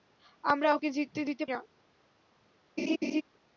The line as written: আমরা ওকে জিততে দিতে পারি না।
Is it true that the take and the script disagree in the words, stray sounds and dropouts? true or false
true